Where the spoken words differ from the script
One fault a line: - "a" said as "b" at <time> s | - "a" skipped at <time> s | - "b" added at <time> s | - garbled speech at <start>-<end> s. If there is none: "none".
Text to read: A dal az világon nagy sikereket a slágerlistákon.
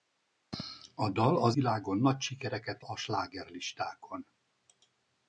none